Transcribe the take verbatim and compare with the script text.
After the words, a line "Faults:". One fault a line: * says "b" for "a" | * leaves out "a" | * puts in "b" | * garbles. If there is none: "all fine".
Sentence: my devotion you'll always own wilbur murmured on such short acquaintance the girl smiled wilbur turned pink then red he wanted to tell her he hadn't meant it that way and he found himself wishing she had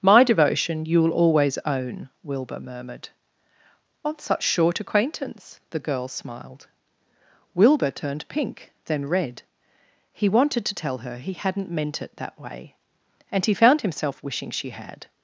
my devotion you'll always own wilbur murmured on such short acquaintance the girl smiled wilbur turned pink then red he wanted to tell her he hadn't meant it that way and he found himself wishing she had
Faults:
all fine